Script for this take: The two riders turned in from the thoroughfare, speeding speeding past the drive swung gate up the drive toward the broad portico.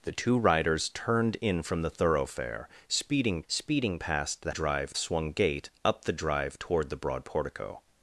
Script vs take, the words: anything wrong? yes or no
no